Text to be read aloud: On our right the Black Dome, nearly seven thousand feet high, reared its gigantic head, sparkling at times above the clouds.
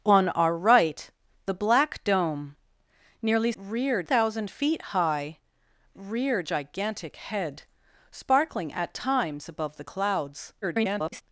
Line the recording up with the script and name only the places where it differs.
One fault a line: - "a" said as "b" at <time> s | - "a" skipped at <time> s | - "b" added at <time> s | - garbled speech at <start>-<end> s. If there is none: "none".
- "seven" said as "reared" at 3.5 s
- "its" skipped at 6.5 s
- garbled speech at 10.6-11.2 s